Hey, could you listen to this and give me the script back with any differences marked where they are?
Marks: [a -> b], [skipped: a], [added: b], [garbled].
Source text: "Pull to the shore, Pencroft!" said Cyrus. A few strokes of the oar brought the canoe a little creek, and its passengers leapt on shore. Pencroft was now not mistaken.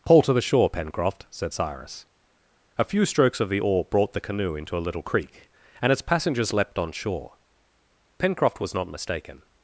"Pull to the shore, Pencroft!" said Cyrus. A few strokes of the oar brought the canoe [added: into] a little creek, and its passengers leapt on shore. Pencroft was [skipped: now] not mistaken.